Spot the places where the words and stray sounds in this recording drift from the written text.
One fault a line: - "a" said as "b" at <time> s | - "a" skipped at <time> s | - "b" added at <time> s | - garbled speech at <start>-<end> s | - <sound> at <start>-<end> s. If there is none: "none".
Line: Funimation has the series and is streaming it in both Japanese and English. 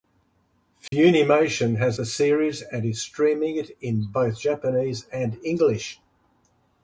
- dropout at 0.9-0.9 s